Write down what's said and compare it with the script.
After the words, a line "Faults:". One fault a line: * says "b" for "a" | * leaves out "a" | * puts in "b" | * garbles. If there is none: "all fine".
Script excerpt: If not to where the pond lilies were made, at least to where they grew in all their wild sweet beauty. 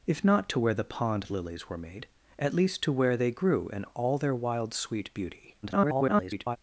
If not to where the pond lilies were made, at least to where they grew in all their wild sweet beauty. [garbled]
Faults:
* garbles